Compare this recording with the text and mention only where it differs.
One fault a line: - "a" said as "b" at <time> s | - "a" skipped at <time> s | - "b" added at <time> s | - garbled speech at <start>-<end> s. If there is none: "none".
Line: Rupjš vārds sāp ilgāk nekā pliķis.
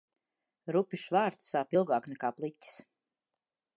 none